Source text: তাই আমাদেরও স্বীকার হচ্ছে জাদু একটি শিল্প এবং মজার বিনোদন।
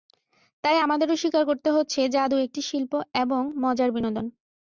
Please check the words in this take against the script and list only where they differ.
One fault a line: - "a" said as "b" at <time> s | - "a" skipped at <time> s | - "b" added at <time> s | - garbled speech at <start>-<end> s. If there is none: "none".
- "করতে" added at 1.5 s